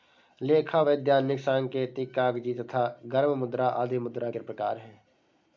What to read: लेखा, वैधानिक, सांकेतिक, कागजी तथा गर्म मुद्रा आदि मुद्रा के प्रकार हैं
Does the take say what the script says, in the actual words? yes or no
yes